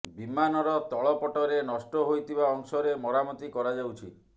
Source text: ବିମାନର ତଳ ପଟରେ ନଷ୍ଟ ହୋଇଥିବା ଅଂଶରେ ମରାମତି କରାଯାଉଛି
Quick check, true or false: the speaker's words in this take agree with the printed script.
true